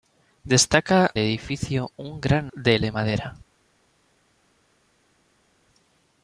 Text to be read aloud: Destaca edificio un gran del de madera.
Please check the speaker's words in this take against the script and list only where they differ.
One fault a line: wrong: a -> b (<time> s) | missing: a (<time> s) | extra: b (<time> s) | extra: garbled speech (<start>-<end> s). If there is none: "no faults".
no faults